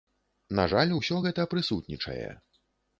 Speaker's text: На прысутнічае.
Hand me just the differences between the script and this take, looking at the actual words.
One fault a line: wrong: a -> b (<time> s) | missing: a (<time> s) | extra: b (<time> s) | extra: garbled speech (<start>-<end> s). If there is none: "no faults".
extra: жаль усё гэта (0.7 s)